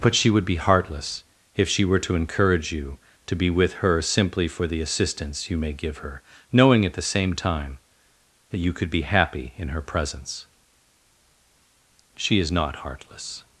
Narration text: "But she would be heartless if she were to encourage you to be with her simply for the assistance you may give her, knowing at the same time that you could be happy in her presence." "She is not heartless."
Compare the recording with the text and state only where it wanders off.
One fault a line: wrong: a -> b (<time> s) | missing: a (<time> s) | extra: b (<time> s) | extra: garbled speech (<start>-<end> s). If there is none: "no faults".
no faults